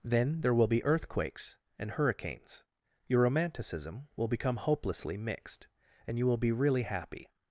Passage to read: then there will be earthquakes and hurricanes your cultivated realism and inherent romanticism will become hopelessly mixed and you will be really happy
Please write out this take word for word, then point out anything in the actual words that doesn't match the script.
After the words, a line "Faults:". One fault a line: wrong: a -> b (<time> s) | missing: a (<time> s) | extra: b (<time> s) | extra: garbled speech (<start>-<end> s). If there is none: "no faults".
then there will be earthquakes and hurricanes your romanticism will become hopelessly mixed and you will be really happy
Faults:
missing: cultivated realism and inherent (3.2 s)